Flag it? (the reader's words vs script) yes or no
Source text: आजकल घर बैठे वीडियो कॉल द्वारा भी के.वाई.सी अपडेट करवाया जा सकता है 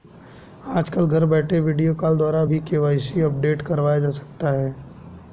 no